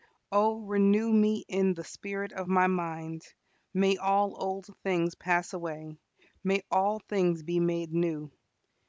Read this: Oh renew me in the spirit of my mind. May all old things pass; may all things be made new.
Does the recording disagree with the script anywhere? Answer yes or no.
yes